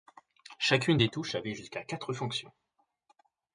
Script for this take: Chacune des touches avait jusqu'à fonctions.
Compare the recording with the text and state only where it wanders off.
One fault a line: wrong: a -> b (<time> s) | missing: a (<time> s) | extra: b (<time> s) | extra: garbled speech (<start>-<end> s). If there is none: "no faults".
extra: quatre (1.8 s)